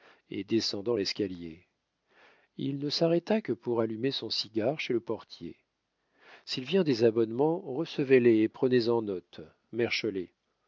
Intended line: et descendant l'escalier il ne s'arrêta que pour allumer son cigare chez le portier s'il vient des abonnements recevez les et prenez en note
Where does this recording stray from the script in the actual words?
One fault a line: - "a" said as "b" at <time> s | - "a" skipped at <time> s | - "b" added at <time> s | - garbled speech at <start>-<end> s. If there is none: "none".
none